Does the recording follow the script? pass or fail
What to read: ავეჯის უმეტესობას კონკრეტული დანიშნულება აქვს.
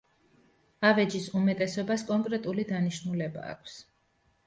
pass